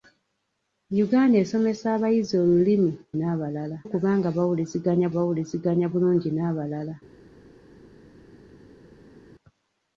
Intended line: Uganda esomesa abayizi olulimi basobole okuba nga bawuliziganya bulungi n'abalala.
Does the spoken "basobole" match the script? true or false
false